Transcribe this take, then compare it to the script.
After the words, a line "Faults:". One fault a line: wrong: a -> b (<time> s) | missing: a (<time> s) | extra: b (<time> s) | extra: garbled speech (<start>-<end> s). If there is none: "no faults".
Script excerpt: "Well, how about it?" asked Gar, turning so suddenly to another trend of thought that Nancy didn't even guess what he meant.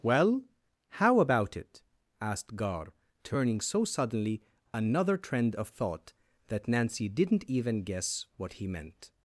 "Well, how about it?" asked Gar, turning so suddenly another trend of thought that Nancy didn't even guess what he meant.
Faults:
missing: to (4.4 s)